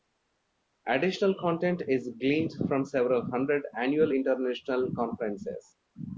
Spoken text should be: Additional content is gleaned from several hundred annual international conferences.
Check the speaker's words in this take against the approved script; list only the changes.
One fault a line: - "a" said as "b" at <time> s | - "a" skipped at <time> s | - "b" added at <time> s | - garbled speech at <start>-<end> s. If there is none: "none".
none